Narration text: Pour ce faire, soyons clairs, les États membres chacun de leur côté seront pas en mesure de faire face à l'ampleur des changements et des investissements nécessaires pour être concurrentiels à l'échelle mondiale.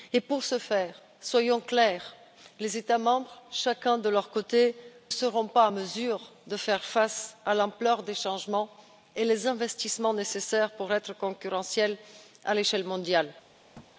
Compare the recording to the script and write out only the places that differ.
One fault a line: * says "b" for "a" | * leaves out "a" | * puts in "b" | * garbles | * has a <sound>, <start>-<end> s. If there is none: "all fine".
* has a thud, 13.7-13.9 s